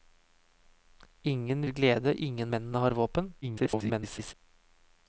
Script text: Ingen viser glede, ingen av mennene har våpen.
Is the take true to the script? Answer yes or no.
no